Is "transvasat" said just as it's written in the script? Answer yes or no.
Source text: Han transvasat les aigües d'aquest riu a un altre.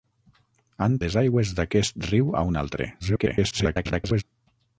no